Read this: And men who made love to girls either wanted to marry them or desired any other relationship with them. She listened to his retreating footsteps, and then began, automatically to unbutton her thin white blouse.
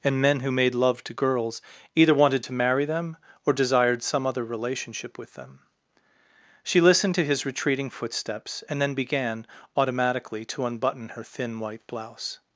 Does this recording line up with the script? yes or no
no